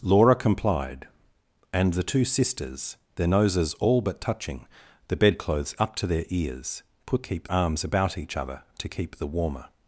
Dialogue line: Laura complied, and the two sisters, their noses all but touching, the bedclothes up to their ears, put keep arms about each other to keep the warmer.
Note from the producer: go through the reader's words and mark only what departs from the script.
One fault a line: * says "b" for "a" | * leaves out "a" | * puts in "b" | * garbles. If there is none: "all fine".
all fine